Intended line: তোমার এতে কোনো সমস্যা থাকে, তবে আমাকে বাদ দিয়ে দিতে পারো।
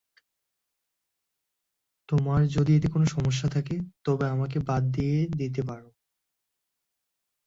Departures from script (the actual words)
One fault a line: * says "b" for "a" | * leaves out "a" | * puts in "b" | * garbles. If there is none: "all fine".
* puts in "যদি"